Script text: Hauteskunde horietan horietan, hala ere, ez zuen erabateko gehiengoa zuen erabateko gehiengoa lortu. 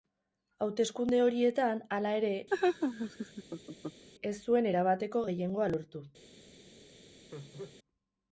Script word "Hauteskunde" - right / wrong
right